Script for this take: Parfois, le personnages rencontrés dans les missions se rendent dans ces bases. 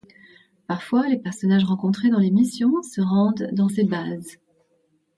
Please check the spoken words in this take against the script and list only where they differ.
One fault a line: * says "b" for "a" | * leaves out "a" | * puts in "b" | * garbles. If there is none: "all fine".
* says "les" for "le"